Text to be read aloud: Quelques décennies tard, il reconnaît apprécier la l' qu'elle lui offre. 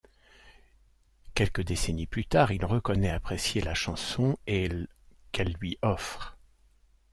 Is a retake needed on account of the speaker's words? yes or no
yes